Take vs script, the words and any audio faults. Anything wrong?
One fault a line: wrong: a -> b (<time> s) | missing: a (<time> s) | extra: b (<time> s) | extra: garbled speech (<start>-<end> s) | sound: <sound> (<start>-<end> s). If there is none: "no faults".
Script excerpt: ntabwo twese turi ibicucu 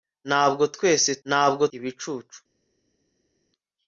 wrong: turi -> ntabwo (1.3 s)